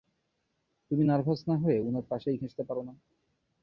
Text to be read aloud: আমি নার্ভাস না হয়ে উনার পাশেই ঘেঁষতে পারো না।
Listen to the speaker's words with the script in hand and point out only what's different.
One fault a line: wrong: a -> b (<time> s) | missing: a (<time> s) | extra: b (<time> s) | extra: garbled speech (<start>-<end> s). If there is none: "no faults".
wrong: আমি -> তুমি (0.9 s)